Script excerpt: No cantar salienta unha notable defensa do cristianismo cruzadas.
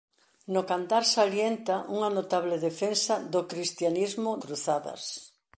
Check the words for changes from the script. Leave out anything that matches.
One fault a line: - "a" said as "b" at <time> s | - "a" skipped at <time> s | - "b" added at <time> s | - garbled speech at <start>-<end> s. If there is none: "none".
none